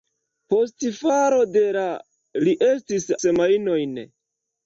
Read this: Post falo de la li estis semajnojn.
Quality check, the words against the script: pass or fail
pass